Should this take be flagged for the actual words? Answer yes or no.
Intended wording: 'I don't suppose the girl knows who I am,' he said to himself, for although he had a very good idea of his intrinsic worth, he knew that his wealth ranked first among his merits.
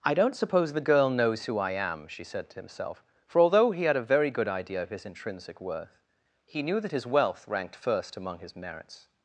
yes